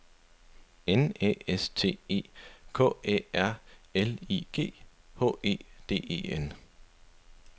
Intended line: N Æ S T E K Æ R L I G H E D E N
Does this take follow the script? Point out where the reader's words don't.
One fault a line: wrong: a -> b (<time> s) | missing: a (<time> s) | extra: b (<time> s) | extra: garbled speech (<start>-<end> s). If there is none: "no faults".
no faults